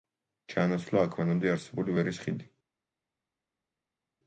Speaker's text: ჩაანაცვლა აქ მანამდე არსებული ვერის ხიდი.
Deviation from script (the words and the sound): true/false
false